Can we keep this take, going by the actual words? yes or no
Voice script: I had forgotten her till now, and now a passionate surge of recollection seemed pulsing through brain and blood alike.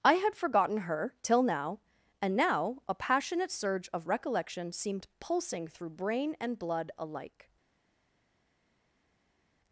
yes